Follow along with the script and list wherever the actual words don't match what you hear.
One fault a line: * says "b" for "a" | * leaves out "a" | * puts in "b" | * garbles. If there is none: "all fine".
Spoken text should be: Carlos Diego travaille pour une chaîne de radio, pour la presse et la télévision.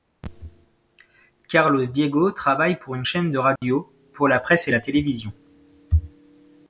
all fine